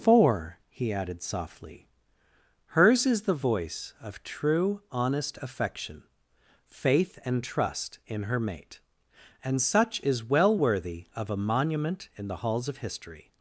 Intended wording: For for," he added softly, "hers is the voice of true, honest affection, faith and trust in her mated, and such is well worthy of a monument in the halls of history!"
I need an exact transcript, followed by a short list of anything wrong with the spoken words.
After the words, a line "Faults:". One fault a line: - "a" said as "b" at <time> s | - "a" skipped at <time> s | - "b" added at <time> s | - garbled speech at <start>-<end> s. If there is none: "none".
For," he added softly, "hers is the voice of true, honest affection, faith and trust in her mate, and such is well worthy of a monument in the halls of history!"
Faults:
- "for" skipped at 0.6 s
- "mated" said as "mate" at 8.4 s